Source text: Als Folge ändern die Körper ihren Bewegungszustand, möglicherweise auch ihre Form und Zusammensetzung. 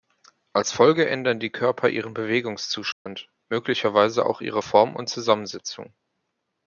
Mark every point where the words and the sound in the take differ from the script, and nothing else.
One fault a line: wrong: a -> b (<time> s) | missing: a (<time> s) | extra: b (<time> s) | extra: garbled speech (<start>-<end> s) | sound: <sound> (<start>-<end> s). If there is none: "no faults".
sound: dropout (2.9-3.1 s)